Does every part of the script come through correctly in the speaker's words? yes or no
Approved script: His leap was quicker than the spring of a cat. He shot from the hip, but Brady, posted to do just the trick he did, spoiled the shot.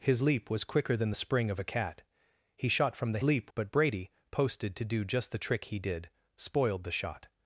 no